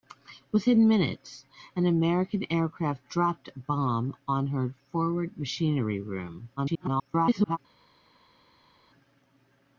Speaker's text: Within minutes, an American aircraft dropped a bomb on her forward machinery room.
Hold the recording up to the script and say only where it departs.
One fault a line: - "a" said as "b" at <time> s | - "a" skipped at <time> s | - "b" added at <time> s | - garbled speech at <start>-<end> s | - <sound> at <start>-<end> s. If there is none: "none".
- garbled speech at 6.6-7.6 s